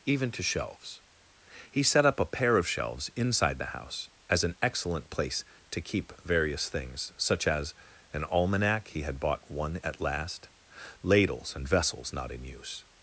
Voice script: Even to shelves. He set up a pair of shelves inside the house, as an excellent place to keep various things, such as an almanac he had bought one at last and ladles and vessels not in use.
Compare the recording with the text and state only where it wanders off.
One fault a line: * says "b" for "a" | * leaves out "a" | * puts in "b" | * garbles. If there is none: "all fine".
* leaves out "and"